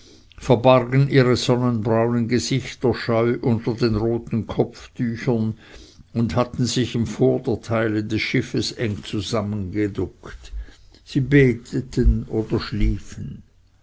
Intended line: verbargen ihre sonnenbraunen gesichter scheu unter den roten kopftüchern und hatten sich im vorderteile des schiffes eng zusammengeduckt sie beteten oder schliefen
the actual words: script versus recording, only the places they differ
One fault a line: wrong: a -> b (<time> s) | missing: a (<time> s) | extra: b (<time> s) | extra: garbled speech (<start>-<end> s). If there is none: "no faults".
no faults